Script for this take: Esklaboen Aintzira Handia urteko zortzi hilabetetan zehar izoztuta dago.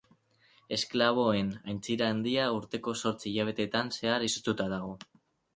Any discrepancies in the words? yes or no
no